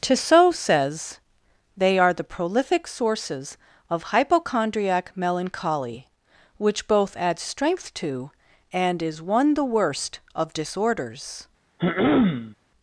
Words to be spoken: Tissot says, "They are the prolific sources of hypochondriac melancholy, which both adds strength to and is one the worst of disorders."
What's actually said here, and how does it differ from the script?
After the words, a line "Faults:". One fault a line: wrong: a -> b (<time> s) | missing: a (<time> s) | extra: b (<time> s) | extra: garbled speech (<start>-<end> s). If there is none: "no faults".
Tissot says, "They are the prolific sources of hypochondriac melancholy, which both adds strength to and is one the worst of disorders."
Faults:
no faults